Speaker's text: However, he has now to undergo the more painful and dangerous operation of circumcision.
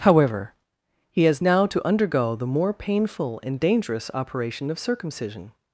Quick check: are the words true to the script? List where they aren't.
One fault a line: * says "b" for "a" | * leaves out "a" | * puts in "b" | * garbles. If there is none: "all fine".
all fine